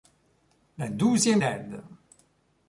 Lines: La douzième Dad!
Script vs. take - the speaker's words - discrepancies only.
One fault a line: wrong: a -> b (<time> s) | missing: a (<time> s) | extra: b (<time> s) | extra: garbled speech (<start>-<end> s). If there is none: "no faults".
no faults